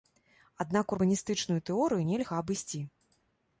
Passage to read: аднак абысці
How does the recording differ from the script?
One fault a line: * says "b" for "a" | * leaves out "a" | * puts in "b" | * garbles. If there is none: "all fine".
* puts in "урбаністычную тэорыю нельга"